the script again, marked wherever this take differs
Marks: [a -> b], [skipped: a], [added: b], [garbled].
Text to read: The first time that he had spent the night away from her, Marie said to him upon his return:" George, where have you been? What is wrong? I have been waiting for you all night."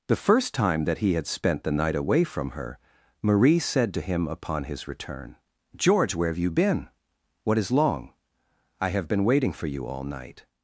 The first time that he had spent the night away from her, Marie said to him upon his return:" George, where have you been? What is [wrong? -> long] I have been waiting for you all night."